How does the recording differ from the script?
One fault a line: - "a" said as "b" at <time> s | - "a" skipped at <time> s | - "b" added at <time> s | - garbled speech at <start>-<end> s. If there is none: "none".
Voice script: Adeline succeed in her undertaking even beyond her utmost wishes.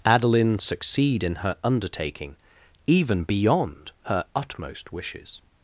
none